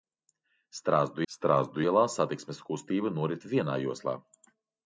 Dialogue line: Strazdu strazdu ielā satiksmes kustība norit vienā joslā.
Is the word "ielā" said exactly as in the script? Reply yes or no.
yes